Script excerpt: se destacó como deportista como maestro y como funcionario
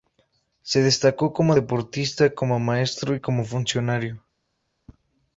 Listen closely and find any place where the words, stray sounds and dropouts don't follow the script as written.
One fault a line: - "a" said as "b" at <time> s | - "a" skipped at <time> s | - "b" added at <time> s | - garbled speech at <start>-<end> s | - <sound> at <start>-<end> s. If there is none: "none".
none